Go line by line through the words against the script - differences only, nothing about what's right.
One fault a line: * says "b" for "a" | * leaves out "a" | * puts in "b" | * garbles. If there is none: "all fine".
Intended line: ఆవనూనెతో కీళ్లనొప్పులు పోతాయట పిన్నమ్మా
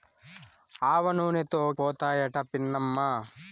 * leaves out "కీళ్లనొప్పులు"